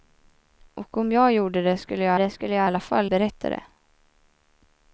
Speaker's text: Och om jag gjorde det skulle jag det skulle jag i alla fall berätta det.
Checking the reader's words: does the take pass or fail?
pass